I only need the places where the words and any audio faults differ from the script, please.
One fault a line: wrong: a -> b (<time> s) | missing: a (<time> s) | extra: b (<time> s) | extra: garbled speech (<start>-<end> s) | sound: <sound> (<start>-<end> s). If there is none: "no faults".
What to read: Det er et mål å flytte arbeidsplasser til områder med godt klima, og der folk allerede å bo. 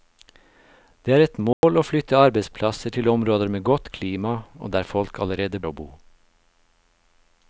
sound: dropout (1.5-1.6 s)